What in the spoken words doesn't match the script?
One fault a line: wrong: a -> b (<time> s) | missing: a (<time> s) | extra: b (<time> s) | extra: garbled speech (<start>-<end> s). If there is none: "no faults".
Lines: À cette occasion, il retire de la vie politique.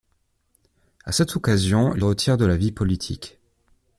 no faults